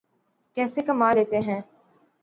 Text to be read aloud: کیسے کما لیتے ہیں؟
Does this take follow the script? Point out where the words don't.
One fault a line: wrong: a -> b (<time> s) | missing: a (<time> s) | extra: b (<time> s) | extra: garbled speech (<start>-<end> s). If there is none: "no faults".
no faults